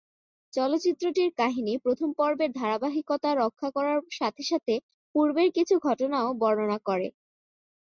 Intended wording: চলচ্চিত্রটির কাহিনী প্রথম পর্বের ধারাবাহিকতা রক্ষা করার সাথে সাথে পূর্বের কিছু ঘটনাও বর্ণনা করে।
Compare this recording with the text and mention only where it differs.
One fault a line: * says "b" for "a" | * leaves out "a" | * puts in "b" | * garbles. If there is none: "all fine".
all fine